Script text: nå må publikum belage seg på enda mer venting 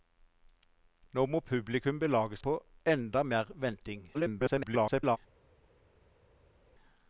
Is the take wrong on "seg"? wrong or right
wrong